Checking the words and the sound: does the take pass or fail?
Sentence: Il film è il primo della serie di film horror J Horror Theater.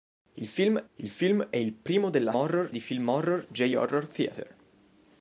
fail